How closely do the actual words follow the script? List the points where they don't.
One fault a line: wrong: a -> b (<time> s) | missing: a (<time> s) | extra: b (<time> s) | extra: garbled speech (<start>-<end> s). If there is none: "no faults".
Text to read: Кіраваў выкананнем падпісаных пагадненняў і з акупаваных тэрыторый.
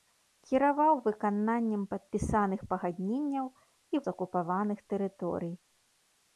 no faults